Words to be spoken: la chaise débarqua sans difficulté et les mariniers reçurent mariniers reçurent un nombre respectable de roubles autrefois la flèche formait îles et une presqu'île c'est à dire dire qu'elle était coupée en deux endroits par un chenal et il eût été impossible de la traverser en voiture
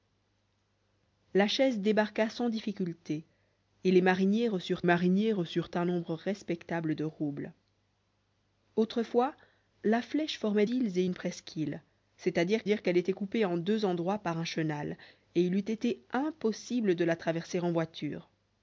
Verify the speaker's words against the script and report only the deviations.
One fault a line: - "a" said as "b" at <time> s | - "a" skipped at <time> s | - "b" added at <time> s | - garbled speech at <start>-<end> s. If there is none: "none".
none